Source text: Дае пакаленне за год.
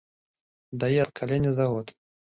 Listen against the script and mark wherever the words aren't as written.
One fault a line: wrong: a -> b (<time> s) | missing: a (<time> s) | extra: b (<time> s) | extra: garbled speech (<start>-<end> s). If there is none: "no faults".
no faults